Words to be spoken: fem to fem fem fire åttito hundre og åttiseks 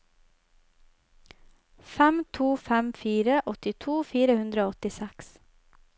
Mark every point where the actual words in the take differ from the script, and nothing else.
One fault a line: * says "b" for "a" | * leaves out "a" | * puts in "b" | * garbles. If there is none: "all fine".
* leaves out "fem"
* puts in "fire"